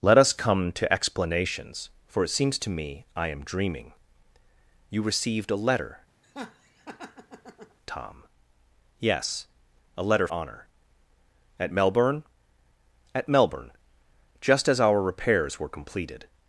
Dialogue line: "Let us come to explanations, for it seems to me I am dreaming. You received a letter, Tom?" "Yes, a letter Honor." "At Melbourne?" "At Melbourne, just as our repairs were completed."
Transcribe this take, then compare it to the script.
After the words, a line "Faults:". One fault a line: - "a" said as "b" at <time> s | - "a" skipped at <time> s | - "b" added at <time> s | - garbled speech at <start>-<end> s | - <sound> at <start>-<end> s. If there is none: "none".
"Let us come to explanations, for it seems to me I am dreaming. You received a letter, Tom?" "Yes, a letter Honor." "At Melbourne?" "At Melbourne, just as our repairs were completed."
Faults:
- laugh at 6.2-7.8 s